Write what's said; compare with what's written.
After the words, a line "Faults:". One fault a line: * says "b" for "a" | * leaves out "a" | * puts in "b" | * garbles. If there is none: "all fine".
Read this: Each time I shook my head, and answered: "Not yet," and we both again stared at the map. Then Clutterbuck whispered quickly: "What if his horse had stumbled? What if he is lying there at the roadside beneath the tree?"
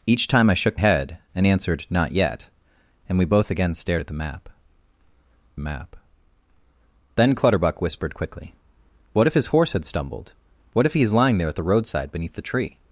Each time I shook head, and answered: "Not yet," and we both again stared at the map map. Then Clutterbuck whispered quickly: "What if his horse had stumbled? What if he is lying there at the roadside beneath the tree?"
Faults:
* leaves out "my"
* puts in "map"